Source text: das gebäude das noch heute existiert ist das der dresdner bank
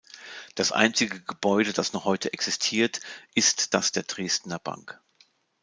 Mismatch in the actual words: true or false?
true